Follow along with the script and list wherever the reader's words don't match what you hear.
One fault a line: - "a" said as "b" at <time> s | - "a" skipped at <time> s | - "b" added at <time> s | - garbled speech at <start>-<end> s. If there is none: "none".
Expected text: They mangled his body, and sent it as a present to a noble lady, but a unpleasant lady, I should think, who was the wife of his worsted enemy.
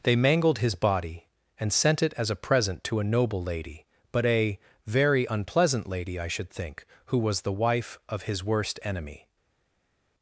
- "very" added at 4.9 s
- "worsted" said as "worst" at 8.4 s